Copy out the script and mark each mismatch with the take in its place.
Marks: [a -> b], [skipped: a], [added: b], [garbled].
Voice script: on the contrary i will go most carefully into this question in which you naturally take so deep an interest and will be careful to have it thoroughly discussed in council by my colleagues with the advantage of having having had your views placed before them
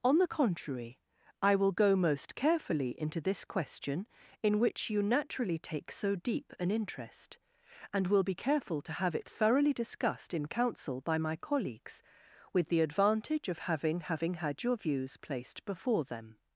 on the contrary i will go most carefully into this question in which you naturally take so deep an interest and will be careful to have it thoroughly discussed in council by my colleagues with the advantage of having having had your views placed before them